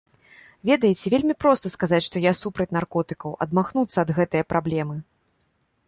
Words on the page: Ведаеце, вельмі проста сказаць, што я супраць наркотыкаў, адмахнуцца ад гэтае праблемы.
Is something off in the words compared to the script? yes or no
no